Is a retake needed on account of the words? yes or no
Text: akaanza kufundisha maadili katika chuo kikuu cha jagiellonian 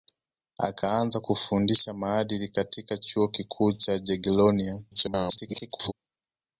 yes